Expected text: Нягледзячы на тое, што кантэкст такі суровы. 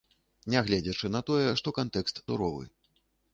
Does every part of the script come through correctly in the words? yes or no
no